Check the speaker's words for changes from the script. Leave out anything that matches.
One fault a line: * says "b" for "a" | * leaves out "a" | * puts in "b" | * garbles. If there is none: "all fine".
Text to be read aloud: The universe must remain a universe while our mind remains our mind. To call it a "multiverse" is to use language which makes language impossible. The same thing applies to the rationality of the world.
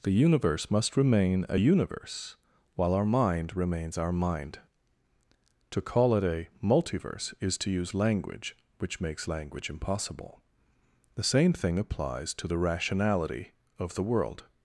all fine